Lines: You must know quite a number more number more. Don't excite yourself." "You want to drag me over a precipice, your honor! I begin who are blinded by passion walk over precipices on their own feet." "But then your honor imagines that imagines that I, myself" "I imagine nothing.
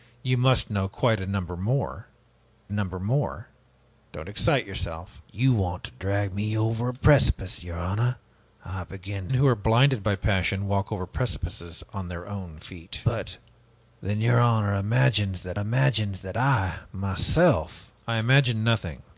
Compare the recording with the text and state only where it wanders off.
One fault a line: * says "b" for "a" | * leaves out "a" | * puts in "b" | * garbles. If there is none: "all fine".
all fine